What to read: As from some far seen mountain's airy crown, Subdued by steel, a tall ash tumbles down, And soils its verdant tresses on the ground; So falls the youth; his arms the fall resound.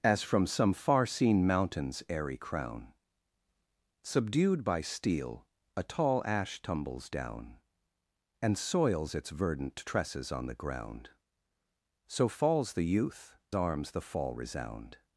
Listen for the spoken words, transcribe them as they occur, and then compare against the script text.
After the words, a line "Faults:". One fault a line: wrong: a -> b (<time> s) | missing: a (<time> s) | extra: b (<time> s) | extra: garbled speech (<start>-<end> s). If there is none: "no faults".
As from some far seen mountain's airy crown, Subdued by steel, a tall ash tumbles down, And soils its verdant tresses on the ground; So falls the youth; arms the fall resound.
Faults:
missing: his (13.4 s)